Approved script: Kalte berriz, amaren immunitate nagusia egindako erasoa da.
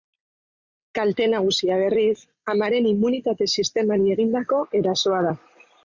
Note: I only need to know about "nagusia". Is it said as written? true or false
false